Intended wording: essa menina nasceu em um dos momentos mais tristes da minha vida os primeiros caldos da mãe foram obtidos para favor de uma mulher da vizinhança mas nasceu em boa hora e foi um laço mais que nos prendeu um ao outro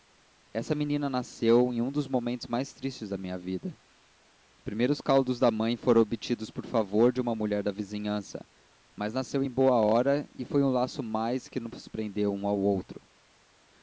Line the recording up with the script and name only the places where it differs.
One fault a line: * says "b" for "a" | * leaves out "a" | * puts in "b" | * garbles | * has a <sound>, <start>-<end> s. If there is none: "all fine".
* says "por" for "para"